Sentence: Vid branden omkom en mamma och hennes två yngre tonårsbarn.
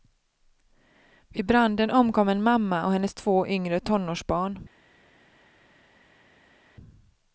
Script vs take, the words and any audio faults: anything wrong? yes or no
no